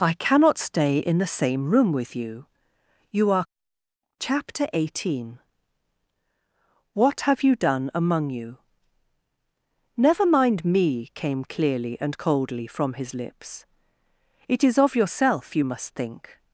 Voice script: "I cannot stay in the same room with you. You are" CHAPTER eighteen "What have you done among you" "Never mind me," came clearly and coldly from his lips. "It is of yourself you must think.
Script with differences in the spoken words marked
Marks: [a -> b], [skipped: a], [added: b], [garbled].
"I cannot stay in the same room with you. You are" CHAPTER eighteen "What have you done among you" "Never mind me," came clearly and coldly from his lips. "It is of yourself you must think.